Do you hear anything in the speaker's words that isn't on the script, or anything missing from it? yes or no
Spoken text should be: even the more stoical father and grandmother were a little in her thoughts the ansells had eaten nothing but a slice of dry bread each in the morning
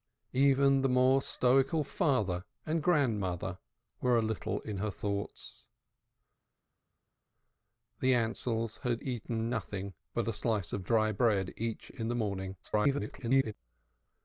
yes